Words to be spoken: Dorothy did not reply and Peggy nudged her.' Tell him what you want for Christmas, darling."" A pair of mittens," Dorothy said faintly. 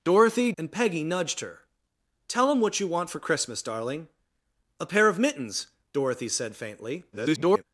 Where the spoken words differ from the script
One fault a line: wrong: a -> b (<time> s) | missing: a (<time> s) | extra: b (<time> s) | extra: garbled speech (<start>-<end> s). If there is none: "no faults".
missing: did not reply (0.5 s)
extra: garbled speech (7.1-7.6 s)